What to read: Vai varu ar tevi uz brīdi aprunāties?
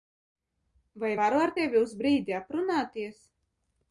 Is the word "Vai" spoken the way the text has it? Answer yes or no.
yes